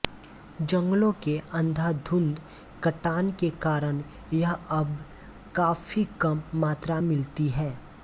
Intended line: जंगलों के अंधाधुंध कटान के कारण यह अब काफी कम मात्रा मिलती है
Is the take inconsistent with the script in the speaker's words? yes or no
no